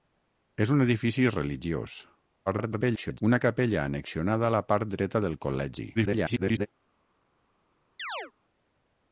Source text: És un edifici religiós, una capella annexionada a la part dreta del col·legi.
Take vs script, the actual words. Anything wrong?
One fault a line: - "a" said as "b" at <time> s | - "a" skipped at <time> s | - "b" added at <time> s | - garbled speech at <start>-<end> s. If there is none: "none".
- garbled speech at 2.5-3.2 s
- garbled speech at 5.9-6.7 s